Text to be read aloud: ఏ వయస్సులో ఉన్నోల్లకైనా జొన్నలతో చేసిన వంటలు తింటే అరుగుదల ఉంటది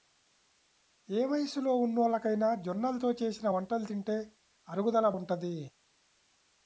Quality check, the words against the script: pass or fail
pass